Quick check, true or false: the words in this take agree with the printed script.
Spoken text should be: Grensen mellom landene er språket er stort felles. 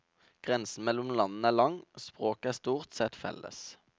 false